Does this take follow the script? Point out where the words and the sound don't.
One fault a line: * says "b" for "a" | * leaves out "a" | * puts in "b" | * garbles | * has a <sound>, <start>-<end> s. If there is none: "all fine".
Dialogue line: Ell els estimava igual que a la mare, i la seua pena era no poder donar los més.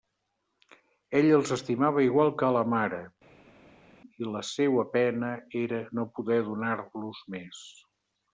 all fine